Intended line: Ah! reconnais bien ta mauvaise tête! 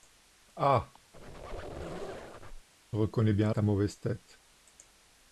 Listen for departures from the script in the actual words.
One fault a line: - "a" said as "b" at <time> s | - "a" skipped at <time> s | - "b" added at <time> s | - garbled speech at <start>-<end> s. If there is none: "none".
none